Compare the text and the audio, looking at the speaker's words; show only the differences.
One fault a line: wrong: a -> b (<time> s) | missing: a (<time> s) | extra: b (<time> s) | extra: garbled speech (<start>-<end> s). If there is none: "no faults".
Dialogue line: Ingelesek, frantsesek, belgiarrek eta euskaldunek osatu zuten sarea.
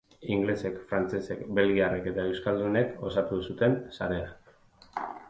no faults